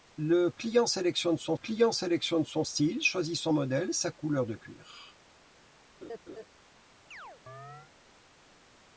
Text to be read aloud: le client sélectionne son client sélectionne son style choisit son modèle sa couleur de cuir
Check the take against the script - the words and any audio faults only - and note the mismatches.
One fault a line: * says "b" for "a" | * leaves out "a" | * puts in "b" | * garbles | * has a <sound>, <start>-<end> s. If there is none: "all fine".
* has a laugh, 6.0-6.5 s
* has a chirp, 7.1-7.9 s